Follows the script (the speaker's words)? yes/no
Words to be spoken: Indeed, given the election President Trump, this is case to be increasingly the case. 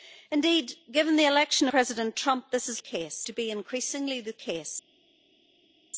yes